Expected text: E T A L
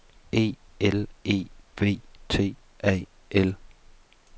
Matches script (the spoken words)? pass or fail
fail